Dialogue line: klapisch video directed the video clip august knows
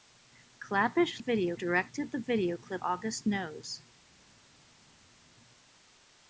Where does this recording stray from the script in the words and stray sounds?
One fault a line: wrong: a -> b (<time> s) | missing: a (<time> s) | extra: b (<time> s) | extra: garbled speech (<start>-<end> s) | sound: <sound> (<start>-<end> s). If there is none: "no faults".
no faults